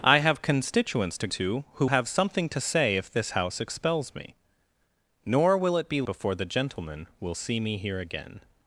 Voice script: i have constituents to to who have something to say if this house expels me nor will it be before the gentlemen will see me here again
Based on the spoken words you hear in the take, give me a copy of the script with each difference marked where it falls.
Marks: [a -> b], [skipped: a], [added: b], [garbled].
i have constituents to to who have something to say if this house expels me nor will it be before the gentlemen will see me here again